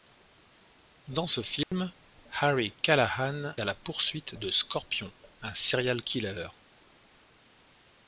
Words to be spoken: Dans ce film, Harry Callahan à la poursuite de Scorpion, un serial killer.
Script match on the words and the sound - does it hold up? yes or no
no